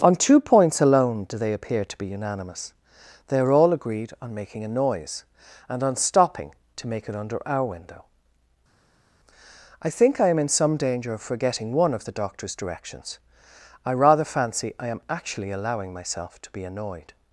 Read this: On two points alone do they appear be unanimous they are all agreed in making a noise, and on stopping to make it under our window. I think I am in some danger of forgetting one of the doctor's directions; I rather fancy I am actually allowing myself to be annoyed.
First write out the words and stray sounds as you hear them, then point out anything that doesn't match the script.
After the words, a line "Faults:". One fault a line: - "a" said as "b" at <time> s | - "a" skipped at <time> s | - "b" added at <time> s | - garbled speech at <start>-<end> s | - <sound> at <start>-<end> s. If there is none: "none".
On two points alone do they appear to be unanimous they are all agreed on making a noise, and on stopping to make it under our window. I think I am in some danger of forgetting one of the doctor's directions; I rather fancy I am actually allowing myself to be annoyed.
Faults:
- "to" added at 1.9 s
- "in" said as "on" at 4.2 s